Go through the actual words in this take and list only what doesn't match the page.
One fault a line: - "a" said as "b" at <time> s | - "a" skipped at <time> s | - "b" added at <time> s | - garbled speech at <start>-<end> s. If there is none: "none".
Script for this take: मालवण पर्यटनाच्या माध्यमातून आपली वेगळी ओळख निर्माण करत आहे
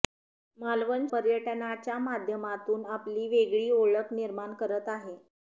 none